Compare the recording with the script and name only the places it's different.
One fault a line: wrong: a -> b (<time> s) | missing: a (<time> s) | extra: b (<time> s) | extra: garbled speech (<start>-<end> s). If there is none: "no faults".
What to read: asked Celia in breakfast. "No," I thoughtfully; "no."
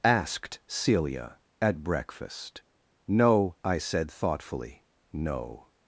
wrong: in -> at (1.6 s)
extra: said (3.8 s)